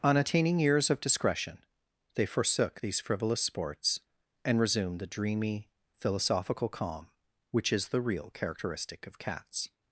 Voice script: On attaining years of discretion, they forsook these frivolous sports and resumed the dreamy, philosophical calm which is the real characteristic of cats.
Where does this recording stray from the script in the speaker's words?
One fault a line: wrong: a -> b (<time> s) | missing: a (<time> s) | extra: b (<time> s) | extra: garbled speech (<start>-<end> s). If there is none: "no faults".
no faults